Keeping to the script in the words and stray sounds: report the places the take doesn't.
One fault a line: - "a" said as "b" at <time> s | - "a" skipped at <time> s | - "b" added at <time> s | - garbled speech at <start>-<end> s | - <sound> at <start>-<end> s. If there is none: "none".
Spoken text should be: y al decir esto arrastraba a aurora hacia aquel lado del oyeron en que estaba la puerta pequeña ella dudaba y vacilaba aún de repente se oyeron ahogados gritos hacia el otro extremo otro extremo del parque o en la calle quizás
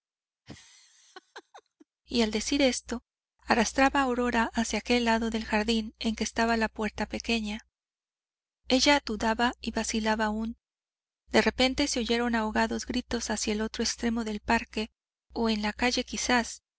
- laugh at 0.5-1.9 s
- "oyeron" said as "jardín" at 5.4 s
- "otro extremo" skipped at 14.2 s